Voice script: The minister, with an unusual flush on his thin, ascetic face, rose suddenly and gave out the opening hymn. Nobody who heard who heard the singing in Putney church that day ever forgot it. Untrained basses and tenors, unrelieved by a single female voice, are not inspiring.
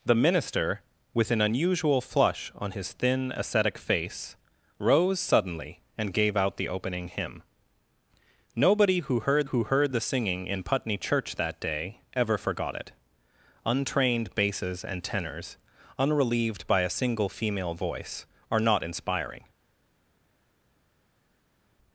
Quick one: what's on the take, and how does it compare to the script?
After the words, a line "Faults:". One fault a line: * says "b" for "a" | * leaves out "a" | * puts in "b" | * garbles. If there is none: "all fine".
The minister, with an unusual flush on his thin, ascetic face, rose suddenly and gave out the opening hymn. Nobody who heard who heard the singing in Putney church that day ever forgot it. Untrained basses and tenors, unrelieved by a single female voice, are not inspiring.
Faults:
all fine